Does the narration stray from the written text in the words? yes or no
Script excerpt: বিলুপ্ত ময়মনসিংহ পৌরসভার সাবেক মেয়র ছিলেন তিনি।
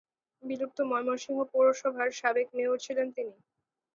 no